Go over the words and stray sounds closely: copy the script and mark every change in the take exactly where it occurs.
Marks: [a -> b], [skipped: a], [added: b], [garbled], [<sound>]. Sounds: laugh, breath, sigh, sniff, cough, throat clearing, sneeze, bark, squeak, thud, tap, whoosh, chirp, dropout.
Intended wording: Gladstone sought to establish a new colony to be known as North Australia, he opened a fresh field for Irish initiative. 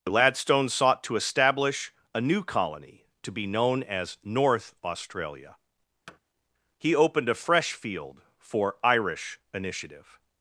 Gladstone sought to establish a new colony to be known as North Australia, [thud] he opened a fresh field for Irish initiative.